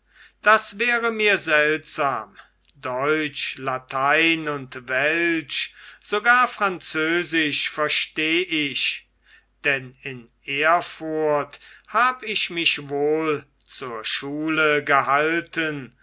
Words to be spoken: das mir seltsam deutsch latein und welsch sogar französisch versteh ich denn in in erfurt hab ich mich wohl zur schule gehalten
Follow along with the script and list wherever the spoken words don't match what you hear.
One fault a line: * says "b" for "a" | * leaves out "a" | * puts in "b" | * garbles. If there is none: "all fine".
* puts in "wäre"
* leaves out "in"